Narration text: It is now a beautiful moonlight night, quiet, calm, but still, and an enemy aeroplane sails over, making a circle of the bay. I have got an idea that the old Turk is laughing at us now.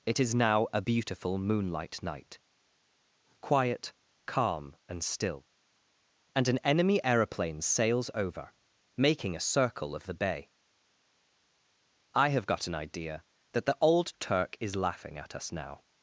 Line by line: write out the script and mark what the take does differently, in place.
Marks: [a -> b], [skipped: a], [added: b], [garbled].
It is now a beautiful moonlight night, quiet, calm, [but -> and] still, and an enemy aeroplane sails over, making a circle of the bay. I have got an idea that the old Turk is laughing at us now.